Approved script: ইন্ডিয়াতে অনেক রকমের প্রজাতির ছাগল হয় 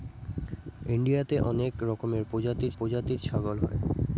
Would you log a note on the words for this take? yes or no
yes